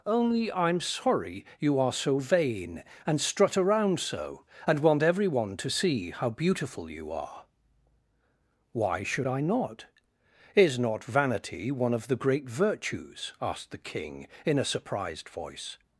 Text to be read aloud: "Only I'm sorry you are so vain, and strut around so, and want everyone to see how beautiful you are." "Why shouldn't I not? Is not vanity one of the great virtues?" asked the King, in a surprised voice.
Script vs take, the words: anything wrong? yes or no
yes